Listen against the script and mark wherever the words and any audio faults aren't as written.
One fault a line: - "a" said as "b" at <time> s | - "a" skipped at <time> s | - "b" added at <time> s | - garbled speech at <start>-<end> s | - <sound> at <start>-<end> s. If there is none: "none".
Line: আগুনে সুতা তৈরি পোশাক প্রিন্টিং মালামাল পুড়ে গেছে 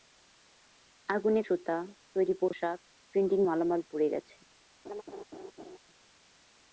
- laugh at 4.8-5.8 s